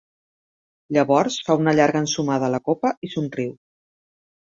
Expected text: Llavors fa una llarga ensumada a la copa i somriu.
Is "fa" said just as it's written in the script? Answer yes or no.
yes